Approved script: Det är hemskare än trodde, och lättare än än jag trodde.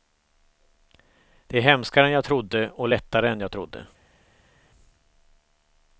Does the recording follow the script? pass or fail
fail